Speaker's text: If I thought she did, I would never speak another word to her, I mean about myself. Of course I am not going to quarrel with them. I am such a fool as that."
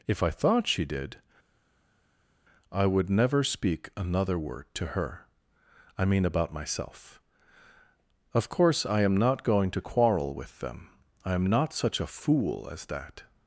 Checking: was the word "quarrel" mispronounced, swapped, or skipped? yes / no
no